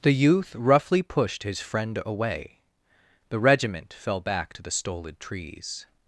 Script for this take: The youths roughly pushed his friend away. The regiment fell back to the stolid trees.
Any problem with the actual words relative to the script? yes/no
yes